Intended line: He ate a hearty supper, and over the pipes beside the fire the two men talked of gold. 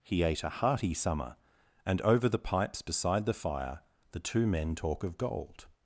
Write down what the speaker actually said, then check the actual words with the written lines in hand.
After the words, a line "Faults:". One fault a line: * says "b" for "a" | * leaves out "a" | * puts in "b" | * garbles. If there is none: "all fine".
He ate a hearty summer, and over the pipes beside the fire the two men talk of gold.
Faults:
* says "summer" for "supper"
* says "talk" for "talked"